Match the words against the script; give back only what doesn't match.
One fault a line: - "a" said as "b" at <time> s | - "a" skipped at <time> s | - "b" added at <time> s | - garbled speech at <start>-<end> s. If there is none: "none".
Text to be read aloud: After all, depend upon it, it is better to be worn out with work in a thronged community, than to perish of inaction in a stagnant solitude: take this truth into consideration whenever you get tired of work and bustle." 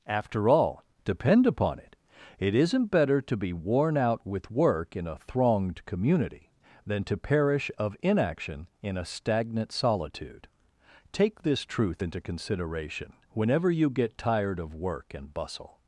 - "is" said as "isn't" at 2.5 s